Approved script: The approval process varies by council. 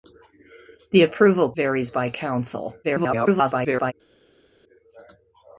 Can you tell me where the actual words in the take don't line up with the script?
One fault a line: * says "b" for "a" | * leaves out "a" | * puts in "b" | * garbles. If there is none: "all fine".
* leaves out "process"
* garbles